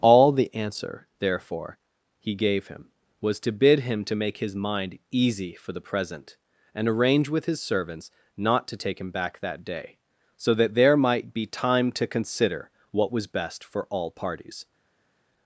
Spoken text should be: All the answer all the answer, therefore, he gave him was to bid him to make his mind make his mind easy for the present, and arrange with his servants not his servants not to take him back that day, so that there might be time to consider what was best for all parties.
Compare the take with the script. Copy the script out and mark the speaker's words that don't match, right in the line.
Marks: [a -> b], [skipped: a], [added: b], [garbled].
All the answer [skipped: all the answer,] therefore, he gave him was to bid him to make his mind [skipped: make his mind] easy for the present, and arrange with his servants not [skipped: his servants not] to take him back that day, so that there might be time to consider what was best for all parties.